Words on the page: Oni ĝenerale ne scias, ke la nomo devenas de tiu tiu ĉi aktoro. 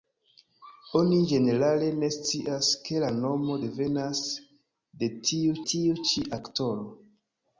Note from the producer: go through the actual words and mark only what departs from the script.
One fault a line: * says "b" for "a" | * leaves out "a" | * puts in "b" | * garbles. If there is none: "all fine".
all fine